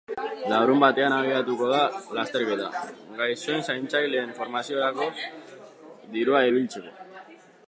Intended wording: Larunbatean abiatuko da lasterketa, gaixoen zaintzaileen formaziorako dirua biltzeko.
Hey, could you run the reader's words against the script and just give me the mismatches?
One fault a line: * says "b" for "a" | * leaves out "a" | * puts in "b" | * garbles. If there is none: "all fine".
all fine